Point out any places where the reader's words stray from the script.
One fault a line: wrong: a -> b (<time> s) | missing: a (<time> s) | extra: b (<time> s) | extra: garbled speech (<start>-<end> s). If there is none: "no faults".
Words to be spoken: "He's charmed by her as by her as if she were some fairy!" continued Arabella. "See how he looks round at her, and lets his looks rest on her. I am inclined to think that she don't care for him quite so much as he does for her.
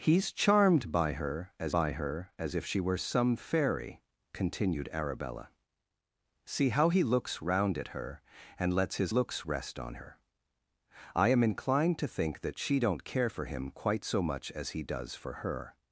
no faults